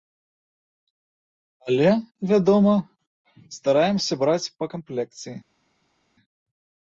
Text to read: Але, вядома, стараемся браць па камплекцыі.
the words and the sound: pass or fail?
pass